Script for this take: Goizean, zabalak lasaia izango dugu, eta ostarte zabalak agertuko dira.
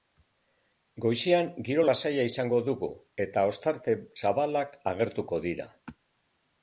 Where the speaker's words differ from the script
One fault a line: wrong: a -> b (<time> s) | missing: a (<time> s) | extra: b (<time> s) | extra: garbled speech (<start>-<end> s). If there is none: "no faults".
wrong: zabalak -> giro (1.7 s)